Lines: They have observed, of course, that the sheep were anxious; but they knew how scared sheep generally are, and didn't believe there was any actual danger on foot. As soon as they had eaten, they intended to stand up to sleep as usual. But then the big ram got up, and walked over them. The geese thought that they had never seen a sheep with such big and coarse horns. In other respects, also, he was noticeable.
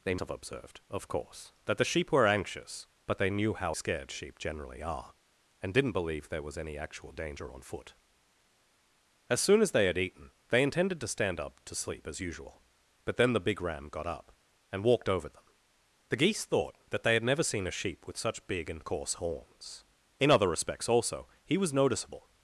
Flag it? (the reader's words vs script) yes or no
no